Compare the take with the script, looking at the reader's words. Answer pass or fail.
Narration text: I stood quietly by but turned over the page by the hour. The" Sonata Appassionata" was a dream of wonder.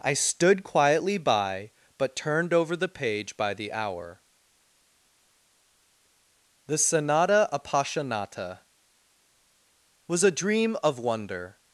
pass